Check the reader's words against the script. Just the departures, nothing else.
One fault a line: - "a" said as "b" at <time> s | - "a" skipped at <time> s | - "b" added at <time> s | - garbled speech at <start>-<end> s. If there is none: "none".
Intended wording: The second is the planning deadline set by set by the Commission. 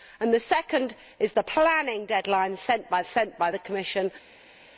none